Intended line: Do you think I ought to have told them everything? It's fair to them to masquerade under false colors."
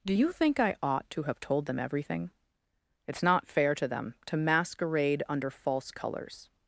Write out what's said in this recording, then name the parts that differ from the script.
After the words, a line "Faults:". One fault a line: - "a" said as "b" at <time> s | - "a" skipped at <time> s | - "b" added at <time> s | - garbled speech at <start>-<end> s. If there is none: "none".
Do you think I ought to have told them everything? It's not fair to them to masquerade under false colors."
Faults:
- "not" added at 3.2 s